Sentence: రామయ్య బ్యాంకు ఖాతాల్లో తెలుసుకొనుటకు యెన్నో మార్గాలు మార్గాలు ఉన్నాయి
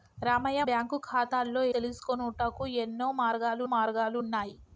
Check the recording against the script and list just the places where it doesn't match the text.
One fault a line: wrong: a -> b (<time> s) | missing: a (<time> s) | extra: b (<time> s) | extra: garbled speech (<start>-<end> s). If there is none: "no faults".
no faults